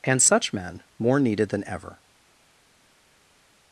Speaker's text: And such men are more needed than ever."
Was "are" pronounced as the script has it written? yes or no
no